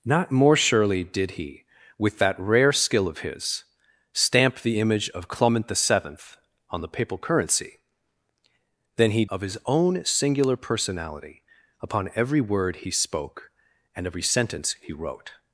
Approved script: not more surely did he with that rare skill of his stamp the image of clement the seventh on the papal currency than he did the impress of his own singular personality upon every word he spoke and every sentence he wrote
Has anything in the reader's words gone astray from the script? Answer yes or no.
yes